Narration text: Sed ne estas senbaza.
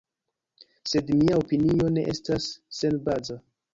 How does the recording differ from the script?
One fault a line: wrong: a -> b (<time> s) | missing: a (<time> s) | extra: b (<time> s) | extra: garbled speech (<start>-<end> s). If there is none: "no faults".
extra: mia opinio (1.2 s)